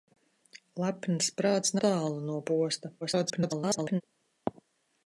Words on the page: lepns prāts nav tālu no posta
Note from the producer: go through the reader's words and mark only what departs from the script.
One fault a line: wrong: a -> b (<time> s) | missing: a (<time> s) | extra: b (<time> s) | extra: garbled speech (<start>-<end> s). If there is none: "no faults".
missing: nav (1.8 s)
extra: garbled speech (3.0-4.0 s)